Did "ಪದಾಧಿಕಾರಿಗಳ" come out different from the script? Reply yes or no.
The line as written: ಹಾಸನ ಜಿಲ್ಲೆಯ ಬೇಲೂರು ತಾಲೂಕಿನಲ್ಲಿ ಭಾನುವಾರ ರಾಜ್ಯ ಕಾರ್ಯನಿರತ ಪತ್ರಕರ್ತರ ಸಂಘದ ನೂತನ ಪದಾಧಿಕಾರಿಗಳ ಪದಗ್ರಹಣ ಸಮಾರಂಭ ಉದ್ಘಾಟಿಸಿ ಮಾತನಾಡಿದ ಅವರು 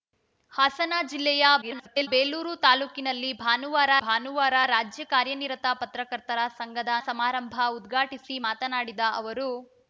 yes